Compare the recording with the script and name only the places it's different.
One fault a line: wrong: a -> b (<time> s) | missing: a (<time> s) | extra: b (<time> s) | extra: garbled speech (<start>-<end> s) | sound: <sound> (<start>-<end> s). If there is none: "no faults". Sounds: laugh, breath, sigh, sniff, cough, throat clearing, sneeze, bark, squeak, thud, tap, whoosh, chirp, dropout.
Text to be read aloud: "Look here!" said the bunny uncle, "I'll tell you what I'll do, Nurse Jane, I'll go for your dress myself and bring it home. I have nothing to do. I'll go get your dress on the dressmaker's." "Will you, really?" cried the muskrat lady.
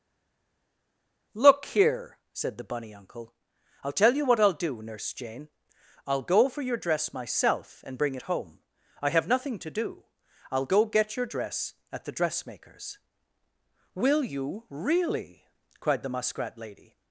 wrong: on -> at (11.9 s)